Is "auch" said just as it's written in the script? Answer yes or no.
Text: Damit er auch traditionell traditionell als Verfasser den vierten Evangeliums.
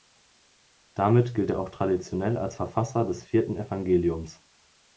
yes